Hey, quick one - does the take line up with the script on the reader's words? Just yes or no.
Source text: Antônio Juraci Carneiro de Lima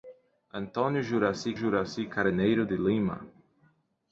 no